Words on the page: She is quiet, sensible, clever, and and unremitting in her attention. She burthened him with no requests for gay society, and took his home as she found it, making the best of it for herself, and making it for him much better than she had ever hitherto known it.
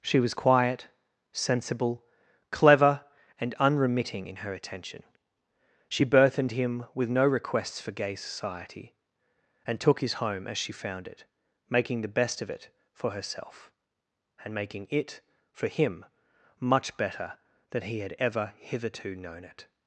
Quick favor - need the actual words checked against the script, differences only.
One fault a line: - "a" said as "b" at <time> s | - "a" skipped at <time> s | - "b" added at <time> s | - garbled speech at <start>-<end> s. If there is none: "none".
- "is" said as "was" at 0.2 s
- "and" skipped at 3.5 s
- "she" said as "he" at 17.8 s